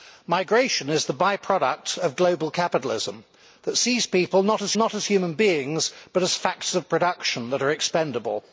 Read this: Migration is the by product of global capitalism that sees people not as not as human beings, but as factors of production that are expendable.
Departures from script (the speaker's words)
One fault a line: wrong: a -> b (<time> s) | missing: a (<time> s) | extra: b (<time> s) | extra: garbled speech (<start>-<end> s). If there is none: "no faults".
no faults